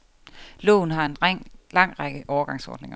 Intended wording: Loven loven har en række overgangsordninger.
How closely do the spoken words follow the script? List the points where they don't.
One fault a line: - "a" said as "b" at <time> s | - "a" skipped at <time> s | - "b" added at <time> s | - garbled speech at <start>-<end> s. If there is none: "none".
- "loven" skipped at 0.9 s
- "lang" added at 1.7 s